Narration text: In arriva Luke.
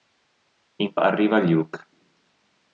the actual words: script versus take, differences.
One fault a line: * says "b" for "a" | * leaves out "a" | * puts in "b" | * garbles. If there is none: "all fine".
all fine